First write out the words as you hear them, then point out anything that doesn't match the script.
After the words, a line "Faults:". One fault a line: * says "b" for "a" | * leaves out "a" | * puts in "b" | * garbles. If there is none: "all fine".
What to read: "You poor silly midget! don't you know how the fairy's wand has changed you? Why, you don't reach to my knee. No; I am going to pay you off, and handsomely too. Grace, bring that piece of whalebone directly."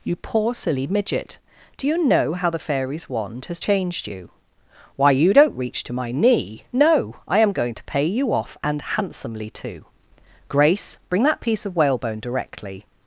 "You poor silly midget! do you know how the fairy's wand has changed you? Why, you don't reach to my knee. No; I am going to pay you off, and handsomely too. Grace, bring that piece of whalebone directly."
Faults:
* says "do" for "don't"